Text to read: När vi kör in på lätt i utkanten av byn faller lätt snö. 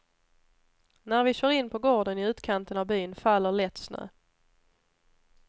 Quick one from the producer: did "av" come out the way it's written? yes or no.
yes